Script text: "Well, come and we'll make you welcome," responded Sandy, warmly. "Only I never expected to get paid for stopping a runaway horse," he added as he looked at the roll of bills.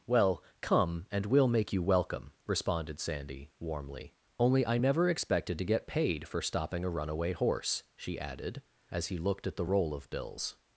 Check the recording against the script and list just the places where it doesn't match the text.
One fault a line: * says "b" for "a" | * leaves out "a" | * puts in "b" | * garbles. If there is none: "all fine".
* says "she" for "he"